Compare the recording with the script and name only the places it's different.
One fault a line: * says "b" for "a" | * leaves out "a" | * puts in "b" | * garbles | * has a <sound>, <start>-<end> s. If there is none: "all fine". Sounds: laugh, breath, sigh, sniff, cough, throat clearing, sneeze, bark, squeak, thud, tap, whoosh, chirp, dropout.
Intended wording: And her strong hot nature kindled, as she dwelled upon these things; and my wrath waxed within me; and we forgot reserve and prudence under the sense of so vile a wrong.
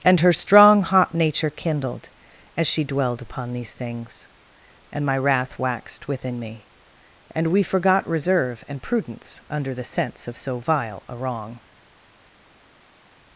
all fine